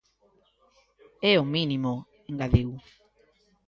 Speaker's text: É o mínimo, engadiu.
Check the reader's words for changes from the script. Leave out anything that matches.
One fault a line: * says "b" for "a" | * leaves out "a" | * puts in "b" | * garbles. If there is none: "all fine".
all fine